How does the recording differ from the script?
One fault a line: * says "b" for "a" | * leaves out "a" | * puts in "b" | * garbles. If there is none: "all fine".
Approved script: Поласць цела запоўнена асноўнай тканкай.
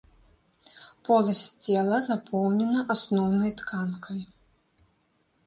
all fine